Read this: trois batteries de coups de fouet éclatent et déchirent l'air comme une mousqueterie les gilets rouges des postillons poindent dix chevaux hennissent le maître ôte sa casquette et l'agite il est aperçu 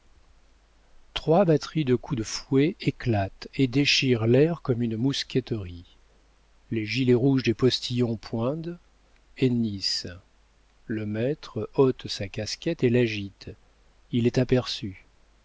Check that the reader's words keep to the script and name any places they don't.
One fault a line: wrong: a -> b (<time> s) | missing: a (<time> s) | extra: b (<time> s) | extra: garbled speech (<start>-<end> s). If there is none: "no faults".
missing: dix chevaux (8.8 s)